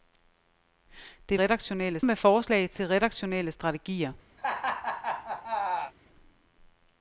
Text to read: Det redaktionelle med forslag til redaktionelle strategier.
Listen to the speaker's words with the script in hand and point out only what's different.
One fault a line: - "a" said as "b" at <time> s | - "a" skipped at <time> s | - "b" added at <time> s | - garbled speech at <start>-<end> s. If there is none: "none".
none